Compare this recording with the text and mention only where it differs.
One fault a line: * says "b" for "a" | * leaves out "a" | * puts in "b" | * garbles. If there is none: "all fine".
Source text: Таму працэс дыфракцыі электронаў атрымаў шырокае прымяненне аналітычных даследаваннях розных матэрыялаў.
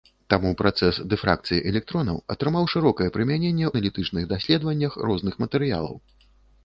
all fine